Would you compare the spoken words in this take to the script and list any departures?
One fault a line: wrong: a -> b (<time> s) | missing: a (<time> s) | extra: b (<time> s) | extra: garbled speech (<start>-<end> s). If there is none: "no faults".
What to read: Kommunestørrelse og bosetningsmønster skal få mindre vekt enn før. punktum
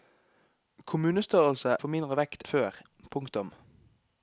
missing: og bosetningsmønster skal (1.8 s)
missing: enn (2.4 s)